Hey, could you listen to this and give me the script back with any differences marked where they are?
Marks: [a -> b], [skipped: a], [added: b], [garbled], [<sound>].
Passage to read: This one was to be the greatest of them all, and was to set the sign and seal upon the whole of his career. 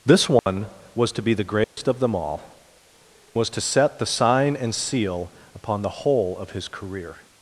This one [dropout] was to be the greatest [dropout] of them all, [skipped: and] was to set the sign and seal upon the whole of his career.